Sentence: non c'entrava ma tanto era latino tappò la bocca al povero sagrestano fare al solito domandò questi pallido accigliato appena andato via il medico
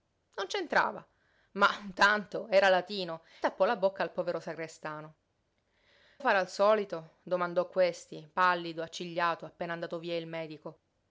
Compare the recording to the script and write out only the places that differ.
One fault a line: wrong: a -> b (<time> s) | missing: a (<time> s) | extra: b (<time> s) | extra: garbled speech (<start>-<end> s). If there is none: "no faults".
no faults